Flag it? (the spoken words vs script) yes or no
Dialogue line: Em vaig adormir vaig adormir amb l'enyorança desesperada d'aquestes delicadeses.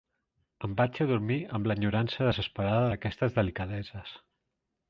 yes